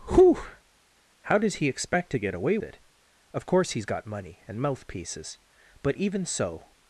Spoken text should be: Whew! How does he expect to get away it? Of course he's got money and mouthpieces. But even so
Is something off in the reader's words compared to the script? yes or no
no